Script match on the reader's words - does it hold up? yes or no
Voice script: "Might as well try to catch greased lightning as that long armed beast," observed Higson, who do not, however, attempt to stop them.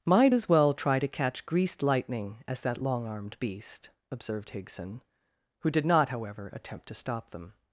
no